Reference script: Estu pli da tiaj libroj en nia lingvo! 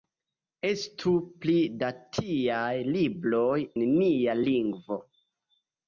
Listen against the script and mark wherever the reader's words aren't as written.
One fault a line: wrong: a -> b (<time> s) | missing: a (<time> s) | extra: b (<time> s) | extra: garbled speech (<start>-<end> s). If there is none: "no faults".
missing: en (3.6 s)